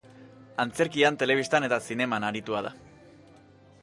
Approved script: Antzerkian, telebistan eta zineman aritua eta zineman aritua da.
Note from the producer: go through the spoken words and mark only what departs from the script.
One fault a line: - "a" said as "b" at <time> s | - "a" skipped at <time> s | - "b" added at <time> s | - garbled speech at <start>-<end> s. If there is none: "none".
- "eta zineman aritua" skipped at 2.6 s